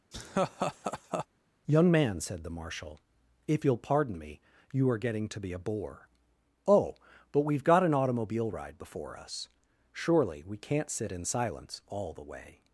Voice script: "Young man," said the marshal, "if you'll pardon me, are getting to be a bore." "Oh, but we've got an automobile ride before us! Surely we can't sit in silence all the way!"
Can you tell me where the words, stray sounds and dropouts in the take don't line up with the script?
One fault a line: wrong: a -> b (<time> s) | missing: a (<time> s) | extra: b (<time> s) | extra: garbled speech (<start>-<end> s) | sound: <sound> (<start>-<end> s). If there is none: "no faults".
sound: laugh (0.1-1.3 s)
extra: you (4.7 s)